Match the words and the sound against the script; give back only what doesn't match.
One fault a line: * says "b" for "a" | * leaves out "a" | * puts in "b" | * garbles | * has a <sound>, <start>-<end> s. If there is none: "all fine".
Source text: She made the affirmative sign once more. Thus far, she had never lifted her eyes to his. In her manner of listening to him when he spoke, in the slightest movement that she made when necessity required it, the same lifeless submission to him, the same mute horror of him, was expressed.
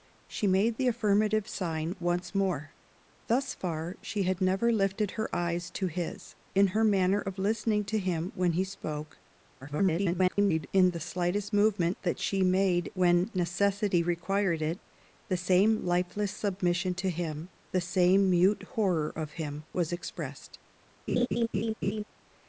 * garbles
* has a laugh, 21.1-22.0 s